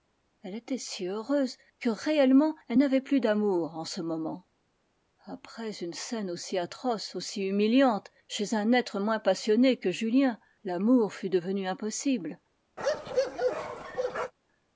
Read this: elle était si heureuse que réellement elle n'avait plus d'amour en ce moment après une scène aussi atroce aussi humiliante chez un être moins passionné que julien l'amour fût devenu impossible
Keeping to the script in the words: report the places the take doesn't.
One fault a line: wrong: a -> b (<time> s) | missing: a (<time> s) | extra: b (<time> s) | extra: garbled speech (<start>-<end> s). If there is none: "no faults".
no faults